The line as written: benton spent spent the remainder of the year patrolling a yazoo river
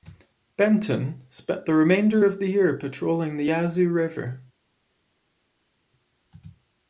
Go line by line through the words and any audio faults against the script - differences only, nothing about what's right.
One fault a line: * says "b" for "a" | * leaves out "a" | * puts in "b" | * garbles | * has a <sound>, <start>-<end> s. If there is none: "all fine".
* leaves out "spent"
* says "the" for "a"